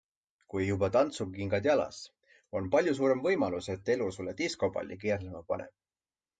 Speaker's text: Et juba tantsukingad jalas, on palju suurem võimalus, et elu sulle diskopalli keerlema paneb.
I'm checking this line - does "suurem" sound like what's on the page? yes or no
yes